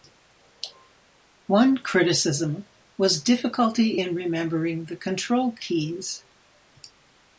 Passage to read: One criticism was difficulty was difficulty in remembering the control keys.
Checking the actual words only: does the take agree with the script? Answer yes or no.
no